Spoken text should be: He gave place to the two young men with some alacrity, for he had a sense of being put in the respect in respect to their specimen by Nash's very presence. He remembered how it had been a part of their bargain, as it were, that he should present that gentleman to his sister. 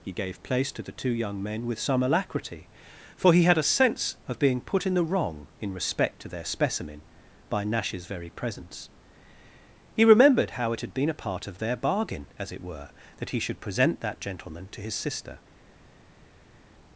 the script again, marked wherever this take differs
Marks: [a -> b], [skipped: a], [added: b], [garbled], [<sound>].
He gave place to the two young men with some alacrity, for he had a sense of being put in the [respect -> wrong] in respect to their specimen by Nash's very presence. He remembered how it had been a part of their bargain, as it were, that he should present that gentleman to his sister.